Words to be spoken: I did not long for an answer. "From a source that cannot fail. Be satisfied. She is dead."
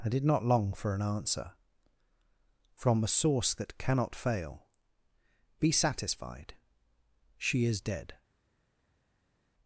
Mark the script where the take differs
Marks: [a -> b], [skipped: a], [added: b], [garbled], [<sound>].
I did not long for an answer. "From a source that cannot fail. Be satisfied. She is dead."